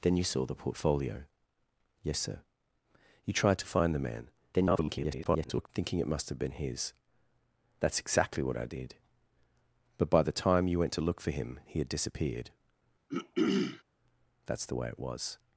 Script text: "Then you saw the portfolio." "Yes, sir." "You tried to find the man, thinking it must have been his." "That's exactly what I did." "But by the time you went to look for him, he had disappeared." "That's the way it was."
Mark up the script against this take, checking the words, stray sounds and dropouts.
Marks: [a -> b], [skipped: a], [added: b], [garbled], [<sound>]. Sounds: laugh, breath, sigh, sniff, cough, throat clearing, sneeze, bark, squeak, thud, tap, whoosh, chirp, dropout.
"Then you saw the portfolio." "Yes, sir." "You tried to find the man, [garbled] thinking it must have been his." "That's exactly what I did." "But by the time you went to look for him, he had disappeared." [throat clearing] "That's the way it was."